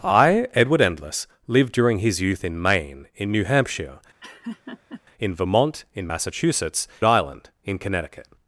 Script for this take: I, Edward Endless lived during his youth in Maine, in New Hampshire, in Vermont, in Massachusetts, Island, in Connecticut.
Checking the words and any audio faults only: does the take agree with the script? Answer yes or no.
no